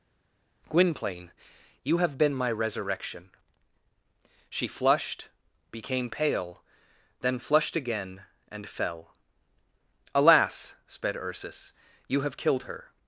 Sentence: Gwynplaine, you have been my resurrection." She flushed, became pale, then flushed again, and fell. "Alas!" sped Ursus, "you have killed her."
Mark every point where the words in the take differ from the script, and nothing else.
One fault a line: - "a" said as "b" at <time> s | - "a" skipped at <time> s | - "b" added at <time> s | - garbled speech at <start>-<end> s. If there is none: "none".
none